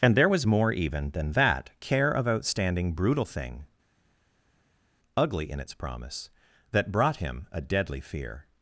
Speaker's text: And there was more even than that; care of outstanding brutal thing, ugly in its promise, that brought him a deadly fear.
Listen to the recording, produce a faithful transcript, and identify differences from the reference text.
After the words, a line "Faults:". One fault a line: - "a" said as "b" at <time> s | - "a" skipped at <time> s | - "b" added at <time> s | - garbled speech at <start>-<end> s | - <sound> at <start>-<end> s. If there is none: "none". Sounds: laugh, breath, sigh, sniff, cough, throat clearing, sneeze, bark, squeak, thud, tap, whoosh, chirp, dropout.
And there was more even than that; care of outstanding brutal thing, ugly in its promise, that brought him a deadly fear.
Faults:
none